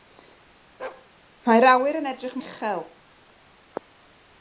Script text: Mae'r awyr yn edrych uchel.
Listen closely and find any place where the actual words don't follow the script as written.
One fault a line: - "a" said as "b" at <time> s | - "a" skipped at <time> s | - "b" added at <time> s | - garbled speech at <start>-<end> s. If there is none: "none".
none